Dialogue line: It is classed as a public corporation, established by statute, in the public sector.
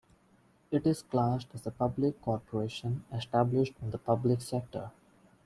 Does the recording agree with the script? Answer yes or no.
no